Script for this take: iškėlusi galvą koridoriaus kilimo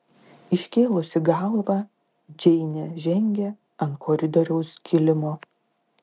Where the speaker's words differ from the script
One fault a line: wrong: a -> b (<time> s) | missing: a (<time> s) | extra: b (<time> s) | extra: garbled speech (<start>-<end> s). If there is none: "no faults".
extra: džeinė žengė ant (2.5 s)